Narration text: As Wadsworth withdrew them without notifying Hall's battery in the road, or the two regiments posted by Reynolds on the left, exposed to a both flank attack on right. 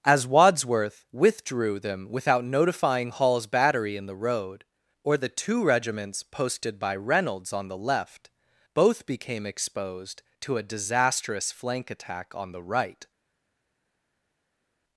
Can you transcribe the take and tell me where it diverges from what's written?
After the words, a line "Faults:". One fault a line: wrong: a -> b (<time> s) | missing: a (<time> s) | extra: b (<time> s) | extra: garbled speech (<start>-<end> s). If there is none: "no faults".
As Wadsworth withdrew them without notifying Hall's battery in the road, or the two regiments posted by Reynolds on the left, both became exposed to a disastrous flank attack on the right.
Faults:
extra: both became (8.7 s)
wrong: both -> disastrous (10.6 s)
extra: the (12.5 s)